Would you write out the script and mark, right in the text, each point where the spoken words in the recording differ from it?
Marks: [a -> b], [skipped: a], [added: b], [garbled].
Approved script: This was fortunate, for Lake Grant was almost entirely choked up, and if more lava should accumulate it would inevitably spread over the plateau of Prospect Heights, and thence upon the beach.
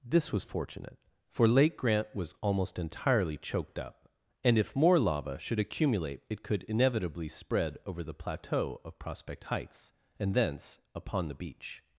This was fortunate, for Lake Grant was almost entirely choked up, and if more lava should accumulate it [would -> could] inevitably spread over the plateau of Prospect Heights, and thence upon the beach.